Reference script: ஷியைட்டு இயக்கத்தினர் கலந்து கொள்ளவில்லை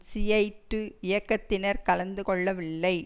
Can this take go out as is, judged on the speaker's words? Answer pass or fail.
pass